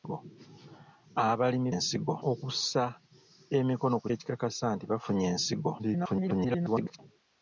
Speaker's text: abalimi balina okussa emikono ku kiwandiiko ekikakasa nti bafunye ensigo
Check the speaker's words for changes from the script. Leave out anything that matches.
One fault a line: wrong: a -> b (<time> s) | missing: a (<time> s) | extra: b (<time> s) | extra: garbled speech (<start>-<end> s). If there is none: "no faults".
wrong: balina -> ensigo (1.7 s)
missing: kiwandiiko (4.1 s)
extra: garbled speech (5.8-7.0 s)